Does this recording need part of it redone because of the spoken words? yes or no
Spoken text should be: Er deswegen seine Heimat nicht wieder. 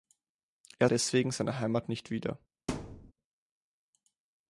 no